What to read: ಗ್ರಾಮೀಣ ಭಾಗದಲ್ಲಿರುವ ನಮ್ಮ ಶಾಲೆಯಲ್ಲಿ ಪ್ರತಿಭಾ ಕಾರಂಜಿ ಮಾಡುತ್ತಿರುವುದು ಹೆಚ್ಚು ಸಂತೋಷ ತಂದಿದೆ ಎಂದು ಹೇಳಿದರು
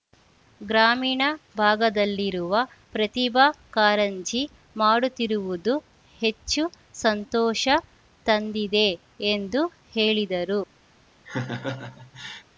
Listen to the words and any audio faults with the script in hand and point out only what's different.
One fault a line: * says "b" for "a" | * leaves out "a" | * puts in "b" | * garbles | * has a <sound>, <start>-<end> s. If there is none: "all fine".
* leaves out "ನಮ್ಮ ಶಾಲೆಯಲ್ಲಿ"
* has a laugh, 11.3-12.4 s